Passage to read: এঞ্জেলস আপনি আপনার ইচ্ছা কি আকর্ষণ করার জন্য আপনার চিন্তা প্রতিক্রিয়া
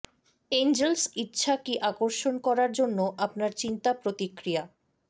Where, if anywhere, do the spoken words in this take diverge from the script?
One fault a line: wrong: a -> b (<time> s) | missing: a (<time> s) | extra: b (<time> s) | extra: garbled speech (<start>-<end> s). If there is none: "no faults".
missing: আপনি আপনার (1.0 s)